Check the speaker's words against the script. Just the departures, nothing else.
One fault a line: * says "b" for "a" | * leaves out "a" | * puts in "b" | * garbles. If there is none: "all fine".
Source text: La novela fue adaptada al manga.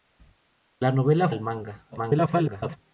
* leaves out "fue adaptada"
* garbles